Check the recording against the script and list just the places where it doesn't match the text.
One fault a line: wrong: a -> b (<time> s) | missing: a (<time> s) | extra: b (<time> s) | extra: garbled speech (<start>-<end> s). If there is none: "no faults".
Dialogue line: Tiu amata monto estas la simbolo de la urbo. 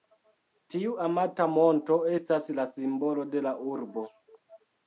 no faults